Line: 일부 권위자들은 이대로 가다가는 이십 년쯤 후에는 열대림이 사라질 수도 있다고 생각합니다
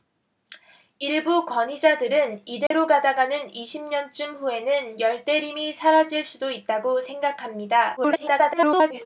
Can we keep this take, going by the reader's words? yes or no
no